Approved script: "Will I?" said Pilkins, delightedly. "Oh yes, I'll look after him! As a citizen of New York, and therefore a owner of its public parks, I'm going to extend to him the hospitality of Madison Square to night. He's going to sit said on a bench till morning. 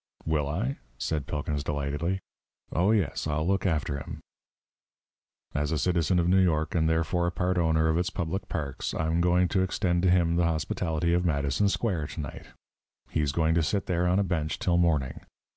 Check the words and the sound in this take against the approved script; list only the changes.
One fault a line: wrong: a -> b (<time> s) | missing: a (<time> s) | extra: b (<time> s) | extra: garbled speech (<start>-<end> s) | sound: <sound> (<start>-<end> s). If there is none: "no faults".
extra: part (7.3 s)
wrong: said -> there (13.9 s)